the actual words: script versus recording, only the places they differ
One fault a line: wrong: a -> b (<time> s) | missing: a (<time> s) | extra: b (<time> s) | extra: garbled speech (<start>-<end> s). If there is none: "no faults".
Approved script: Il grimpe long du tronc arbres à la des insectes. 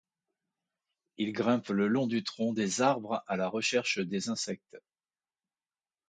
extra: le (1.7 s)
extra: des (2.5 s)
extra: recherche (3.5 s)